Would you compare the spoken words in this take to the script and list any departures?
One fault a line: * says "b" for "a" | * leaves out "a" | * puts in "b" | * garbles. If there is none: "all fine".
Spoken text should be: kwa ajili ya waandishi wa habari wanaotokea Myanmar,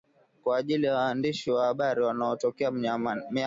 all fine